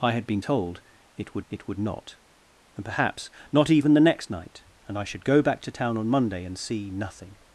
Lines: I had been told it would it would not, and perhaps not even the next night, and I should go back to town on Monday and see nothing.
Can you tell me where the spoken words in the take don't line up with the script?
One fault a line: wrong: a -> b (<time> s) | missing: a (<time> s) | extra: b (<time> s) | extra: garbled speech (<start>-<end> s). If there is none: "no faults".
no faults